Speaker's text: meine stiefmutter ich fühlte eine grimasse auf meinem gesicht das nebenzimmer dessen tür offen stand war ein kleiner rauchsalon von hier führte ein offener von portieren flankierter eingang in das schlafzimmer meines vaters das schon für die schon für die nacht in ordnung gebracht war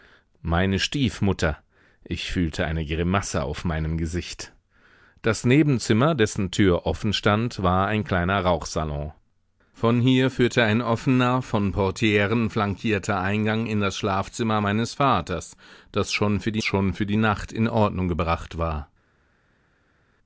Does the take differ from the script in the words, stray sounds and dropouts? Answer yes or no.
no